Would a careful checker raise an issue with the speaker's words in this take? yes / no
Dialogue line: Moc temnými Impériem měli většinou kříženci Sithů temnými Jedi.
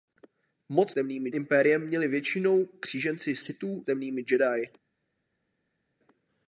no